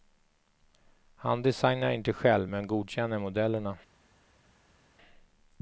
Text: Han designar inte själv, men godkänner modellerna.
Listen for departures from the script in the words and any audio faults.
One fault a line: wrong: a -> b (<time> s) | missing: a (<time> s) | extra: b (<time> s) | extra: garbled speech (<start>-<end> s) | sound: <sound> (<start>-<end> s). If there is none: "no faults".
no faults